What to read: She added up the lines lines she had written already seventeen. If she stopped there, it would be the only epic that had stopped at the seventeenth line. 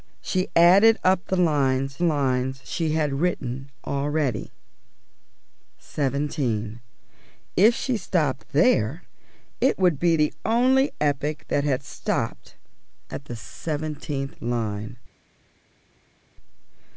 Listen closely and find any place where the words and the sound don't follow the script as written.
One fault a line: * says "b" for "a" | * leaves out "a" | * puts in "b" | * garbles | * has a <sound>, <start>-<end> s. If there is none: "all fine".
all fine